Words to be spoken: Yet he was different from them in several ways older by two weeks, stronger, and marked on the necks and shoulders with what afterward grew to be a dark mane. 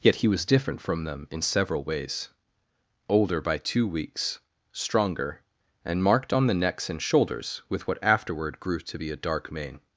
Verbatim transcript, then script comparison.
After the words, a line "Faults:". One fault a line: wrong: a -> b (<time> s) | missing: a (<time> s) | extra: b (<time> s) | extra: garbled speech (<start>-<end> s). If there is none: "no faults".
Yet he was different from them in several ways older by two weeks, stronger, and marked on the necks and shoulders with what afterward grew to be a dark mane.
Faults:
no faults